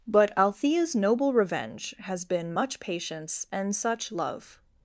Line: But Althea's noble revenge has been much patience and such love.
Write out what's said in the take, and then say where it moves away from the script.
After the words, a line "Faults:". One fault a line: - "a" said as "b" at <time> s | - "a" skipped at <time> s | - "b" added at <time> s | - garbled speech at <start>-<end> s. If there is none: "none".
But Althea's noble revenge has been much patience and such love.
Faults:
none